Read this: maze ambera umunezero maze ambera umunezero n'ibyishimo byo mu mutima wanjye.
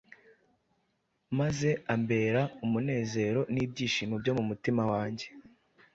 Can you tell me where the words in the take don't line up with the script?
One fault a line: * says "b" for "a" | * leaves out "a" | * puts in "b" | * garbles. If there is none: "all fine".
* leaves out "maze ambera umunezero"